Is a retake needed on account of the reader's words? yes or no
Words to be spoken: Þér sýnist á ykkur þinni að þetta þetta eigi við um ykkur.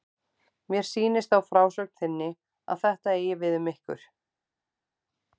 yes